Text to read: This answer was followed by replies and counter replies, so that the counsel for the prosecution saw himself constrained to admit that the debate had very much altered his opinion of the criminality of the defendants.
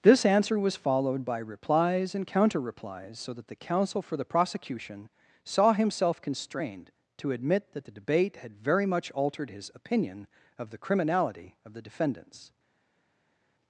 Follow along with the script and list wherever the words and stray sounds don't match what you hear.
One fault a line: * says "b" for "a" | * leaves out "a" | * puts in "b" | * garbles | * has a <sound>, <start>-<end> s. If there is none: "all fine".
all fine